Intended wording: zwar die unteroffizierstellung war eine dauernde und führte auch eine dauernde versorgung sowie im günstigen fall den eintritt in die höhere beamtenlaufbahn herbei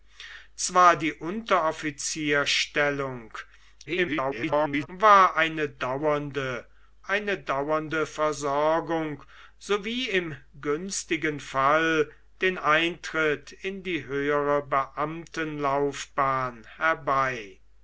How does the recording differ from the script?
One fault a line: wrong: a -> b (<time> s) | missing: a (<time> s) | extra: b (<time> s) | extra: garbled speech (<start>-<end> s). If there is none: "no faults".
extra: garbled speech (3.9-4.9 s)
missing: und führte auch (6.7 s)